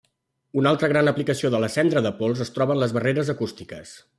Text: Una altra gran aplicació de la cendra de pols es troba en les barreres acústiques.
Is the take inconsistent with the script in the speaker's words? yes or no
no